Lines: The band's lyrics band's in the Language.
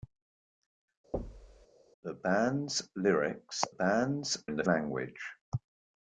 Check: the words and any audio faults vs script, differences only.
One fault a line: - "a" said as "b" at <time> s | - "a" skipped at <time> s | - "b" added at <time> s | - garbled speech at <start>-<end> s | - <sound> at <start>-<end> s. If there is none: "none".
- thud at 1.1-1.7 s